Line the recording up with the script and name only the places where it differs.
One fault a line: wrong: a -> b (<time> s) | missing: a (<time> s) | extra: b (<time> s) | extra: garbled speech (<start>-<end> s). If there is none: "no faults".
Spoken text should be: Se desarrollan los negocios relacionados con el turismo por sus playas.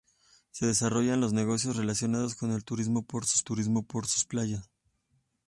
extra: turismo por sus (3.4 s)